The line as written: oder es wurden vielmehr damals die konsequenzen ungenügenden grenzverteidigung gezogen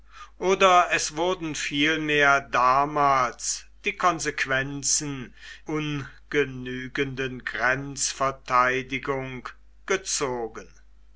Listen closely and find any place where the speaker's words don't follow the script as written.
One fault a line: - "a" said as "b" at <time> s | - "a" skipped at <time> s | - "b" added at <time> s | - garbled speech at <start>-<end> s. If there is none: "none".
none